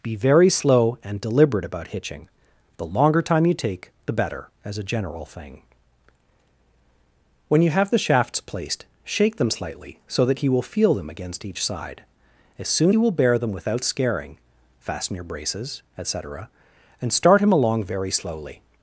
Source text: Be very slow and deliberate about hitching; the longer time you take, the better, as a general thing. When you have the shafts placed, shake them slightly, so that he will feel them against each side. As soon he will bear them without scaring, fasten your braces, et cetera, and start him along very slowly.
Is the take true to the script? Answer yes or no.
yes